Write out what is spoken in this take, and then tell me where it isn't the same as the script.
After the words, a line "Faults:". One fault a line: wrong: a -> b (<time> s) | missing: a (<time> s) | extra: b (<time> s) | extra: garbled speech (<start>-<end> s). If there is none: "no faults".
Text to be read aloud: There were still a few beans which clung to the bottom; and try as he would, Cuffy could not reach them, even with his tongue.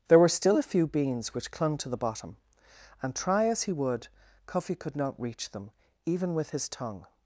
There were still a few beans which clung to the bottom; and try as he would, Cuffy could not reach them, even with his tongue.
Faults:
no faults